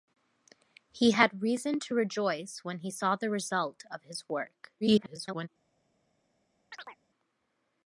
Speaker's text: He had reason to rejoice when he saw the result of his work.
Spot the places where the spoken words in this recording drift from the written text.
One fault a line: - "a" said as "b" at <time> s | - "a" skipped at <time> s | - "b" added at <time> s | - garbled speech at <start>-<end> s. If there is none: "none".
- garbled speech at 4.8-5.5 s